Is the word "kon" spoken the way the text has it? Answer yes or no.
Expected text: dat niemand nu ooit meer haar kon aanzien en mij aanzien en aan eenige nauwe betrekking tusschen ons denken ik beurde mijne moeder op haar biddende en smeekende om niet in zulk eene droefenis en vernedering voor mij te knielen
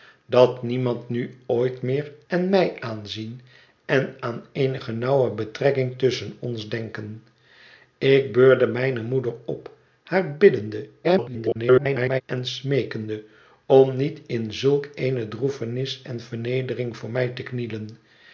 no